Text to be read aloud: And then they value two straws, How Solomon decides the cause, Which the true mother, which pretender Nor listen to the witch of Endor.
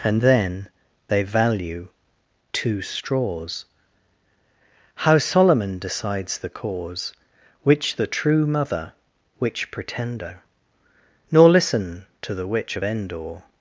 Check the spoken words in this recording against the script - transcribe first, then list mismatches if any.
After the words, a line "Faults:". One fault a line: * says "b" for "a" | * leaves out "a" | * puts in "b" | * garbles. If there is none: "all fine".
And then they value two straws, How Solomon decides the cause, Which the true mother, which pretender Nor listen to the witch of Endor.
Faults:
all fine